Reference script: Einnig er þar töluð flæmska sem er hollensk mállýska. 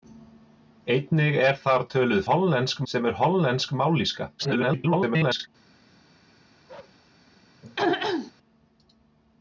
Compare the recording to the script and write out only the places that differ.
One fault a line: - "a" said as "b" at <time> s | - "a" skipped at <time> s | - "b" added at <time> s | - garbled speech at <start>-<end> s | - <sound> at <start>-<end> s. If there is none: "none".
- "flæmska" said as "hollensk" at 2.3 s
- garbled speech at 4.4-5.5 s
- bark at 6.7-7.0 s
- throat clearing at 7.6-8.3 s